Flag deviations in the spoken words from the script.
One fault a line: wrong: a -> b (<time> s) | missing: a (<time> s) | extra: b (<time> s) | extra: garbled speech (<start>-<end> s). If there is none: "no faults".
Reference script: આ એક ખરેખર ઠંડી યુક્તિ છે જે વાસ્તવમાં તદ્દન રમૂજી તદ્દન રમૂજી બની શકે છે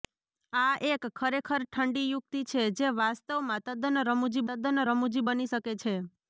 no faults